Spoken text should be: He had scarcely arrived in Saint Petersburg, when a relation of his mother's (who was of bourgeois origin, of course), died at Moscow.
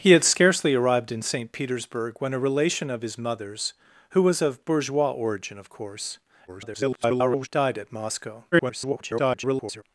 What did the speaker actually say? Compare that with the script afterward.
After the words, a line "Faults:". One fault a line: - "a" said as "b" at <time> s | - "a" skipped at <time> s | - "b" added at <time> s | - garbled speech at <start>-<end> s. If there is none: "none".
He had scarcely arrived in Saint Petersburg, when a relation of his mother's (who was of bourgeois origin, of course), [garbled] died at Moscow. [garbled]
Faults:
- garbled speech at 6.5-7.5 s
- garbled speech at 8.5-9.8 s